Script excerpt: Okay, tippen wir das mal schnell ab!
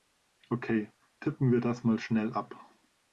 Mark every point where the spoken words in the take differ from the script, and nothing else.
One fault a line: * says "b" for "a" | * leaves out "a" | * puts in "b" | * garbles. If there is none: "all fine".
all fine